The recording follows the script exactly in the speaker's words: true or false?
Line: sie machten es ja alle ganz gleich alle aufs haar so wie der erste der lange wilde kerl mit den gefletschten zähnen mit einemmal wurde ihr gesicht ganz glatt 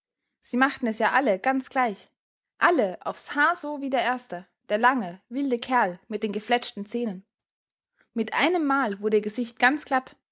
true